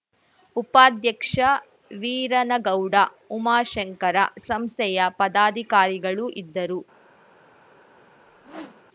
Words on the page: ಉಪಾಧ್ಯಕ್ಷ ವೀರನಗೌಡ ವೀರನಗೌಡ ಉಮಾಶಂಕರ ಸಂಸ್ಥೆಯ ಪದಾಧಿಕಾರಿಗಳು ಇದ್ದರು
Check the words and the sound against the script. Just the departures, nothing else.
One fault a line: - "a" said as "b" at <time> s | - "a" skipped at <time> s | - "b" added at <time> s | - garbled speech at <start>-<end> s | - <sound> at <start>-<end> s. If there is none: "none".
- "ವೀರನಗೌಡ" skipped at 3.0 s
- whoosh at 8.1-8.8 s